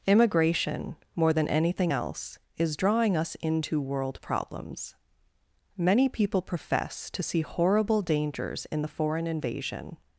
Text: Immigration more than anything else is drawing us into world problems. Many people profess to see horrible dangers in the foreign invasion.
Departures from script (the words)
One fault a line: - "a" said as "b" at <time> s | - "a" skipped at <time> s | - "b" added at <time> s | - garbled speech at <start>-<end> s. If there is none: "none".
none